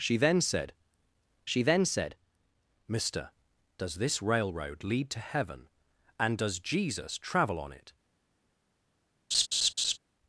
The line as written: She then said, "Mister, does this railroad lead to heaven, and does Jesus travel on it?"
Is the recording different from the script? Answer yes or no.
yes